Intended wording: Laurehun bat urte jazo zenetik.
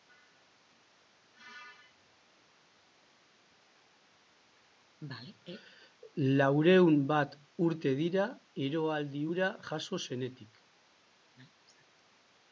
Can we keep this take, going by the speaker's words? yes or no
no